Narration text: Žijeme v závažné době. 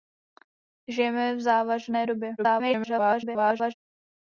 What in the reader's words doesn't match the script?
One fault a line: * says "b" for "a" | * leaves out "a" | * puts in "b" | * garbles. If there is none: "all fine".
* garbles